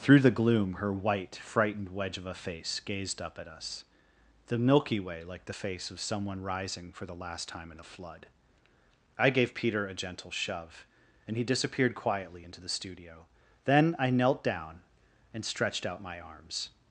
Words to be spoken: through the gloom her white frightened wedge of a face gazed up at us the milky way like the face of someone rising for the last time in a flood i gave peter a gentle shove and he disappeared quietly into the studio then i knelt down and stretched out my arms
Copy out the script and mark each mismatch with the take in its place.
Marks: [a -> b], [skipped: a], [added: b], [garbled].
through the gloom her white frightened wedge of a face gazed up at us the milky way like the face of someone rising for the last time in a flood i gave peter a gentle shove and he disappeared quietly into the studio then i knelt down and stretched out my arms